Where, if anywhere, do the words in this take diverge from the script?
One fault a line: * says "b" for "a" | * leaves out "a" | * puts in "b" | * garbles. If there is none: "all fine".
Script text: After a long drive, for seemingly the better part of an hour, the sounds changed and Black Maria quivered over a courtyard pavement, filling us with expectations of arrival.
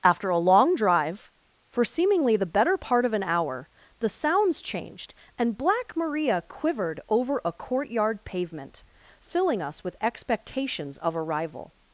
all fine